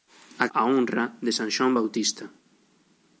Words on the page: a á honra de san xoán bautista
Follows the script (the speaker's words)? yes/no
yes